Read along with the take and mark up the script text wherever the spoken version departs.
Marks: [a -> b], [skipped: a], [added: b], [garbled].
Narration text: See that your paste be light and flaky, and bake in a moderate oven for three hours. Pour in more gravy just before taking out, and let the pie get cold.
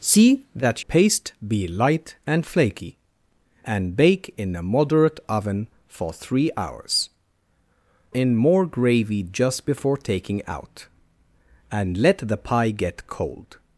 See that [skipped: your] paste be light and flaky, and bake in a moderate oven for three hours. [skipped: Pour] in more gravy just before taking out, and let the pie get cold.